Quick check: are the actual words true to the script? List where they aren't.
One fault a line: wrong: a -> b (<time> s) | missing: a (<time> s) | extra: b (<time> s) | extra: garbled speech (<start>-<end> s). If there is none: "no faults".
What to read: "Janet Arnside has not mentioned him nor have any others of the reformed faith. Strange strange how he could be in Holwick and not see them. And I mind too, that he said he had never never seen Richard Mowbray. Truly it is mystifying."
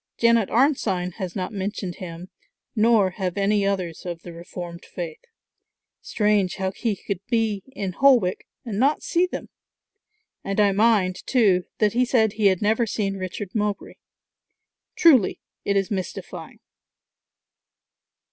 missing: strange (6.5 s)
missing: never (12.8 s)